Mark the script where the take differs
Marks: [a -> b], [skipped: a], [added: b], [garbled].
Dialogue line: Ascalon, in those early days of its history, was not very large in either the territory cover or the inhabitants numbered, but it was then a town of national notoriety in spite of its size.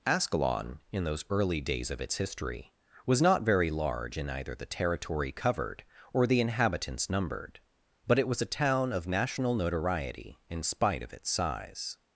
Ascalon, in those early days of its history, was not very large in either the territory [cover -> covered] or the inhabitants numbered, but it was [skipped: then] a town of national notoriety in spite of its size.